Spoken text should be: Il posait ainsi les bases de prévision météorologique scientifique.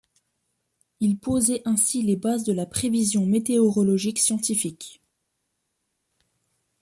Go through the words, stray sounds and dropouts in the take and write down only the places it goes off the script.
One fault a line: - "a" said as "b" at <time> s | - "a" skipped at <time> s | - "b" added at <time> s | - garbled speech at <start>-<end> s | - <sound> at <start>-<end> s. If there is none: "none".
- "la" added at 2.5 s